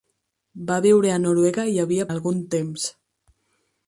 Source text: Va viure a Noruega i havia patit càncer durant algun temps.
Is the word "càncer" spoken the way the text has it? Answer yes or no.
no